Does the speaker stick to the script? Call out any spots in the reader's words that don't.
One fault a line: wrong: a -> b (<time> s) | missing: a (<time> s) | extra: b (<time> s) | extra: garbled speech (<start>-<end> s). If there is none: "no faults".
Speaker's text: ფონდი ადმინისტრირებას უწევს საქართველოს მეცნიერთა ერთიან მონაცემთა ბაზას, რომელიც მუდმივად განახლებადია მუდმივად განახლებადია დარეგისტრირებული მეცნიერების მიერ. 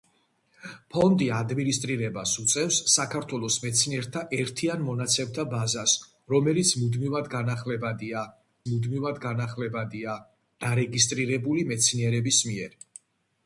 no faults